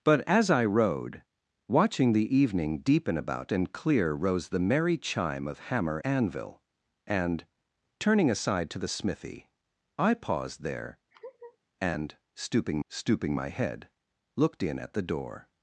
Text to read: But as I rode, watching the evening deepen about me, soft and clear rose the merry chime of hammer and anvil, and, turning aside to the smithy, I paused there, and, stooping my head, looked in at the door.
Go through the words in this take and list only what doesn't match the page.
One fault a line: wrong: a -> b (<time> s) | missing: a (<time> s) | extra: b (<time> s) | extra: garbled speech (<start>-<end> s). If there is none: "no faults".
missing: me soft (3.5 s)
missing: and (6.0 s)
extra: stooping (12.9 s)